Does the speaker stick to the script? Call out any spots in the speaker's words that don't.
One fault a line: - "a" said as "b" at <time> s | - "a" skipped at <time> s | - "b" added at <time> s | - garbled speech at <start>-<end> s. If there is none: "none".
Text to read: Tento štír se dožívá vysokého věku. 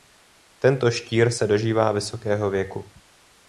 none